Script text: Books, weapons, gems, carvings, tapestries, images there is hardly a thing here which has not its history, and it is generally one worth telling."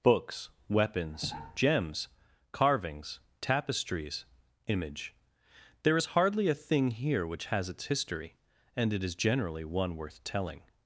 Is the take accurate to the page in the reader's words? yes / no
no